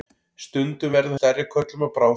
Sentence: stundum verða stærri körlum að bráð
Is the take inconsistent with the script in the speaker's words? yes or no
no